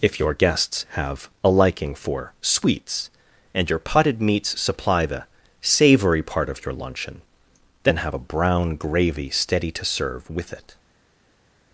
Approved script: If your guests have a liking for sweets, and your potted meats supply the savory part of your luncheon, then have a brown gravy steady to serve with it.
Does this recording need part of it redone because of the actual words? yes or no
no